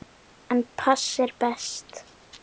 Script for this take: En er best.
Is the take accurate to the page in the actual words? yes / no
no